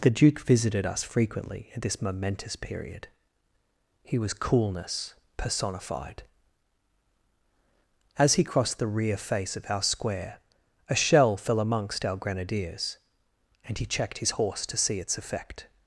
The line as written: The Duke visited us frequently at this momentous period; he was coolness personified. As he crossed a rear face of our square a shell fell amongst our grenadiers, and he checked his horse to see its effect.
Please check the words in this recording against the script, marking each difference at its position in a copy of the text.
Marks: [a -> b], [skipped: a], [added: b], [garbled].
The Duke visited us frequently at this momentous period; he was coolness personified. As he crossed [a -> the] rear face of our square a shell fell amongst our grenadiers, and he checked his horse to see its effect.